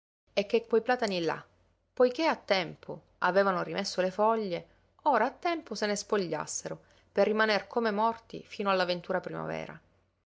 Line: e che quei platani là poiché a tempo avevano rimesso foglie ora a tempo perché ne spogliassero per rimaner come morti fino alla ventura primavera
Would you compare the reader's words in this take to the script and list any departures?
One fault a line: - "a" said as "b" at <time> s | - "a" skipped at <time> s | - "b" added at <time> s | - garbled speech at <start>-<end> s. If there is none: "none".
- "le" added at 4.0 s
- "perché" said as "se" at 5.8 s